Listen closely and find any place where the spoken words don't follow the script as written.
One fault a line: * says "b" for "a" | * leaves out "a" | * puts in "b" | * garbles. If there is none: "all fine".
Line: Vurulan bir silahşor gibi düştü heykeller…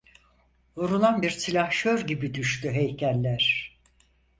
all fine